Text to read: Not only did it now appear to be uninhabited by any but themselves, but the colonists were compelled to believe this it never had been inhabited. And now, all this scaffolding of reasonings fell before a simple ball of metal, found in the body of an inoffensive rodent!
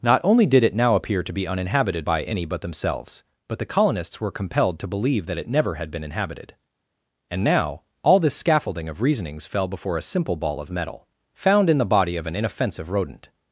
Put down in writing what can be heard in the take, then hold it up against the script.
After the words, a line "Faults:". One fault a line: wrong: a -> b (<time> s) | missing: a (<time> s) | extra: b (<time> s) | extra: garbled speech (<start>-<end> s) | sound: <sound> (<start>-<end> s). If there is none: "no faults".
Not only did it now appear to be uninhabited by any but themselves, but the colonists were compelled to believe that it never had been inhabited. And now, all this scaffolding of reasonings fell before a simple ball of metal, found in the body of an inoffensive rodent!
Faults:
wrong: this -> that (5.3 s)